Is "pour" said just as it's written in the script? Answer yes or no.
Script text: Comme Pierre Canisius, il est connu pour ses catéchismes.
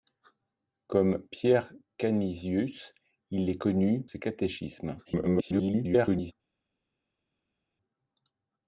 no